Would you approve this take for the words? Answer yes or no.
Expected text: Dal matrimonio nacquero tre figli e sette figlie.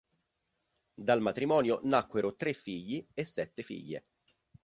yes